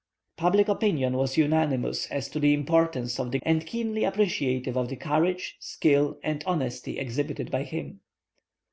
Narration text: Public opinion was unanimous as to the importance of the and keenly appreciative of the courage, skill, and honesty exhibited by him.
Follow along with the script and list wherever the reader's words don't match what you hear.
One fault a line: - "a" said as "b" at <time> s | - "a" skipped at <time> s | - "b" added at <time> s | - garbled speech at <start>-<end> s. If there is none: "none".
none